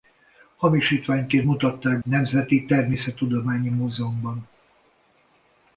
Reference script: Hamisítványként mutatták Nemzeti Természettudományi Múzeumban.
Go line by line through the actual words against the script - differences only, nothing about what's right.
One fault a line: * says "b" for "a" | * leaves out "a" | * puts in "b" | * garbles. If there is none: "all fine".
all fine